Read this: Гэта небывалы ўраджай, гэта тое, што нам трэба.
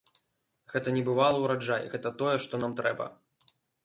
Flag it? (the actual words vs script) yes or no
no